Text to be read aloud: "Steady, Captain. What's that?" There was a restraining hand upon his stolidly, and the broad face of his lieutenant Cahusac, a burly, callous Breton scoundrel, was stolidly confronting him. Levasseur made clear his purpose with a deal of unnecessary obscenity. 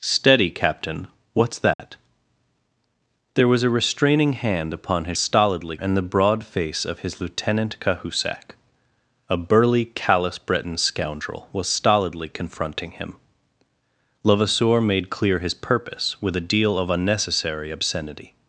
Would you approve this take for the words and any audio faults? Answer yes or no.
no